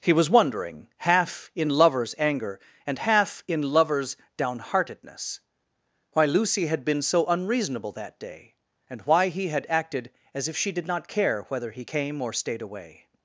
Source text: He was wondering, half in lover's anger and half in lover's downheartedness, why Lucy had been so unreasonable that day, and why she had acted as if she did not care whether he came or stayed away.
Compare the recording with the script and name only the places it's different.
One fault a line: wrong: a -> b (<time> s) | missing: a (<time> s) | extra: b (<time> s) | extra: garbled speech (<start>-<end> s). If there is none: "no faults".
wrong: she -> he (9.3 s)